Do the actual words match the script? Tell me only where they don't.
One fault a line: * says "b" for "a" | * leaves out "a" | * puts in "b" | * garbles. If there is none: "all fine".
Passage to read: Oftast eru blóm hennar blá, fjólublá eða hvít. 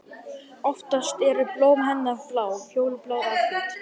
all fine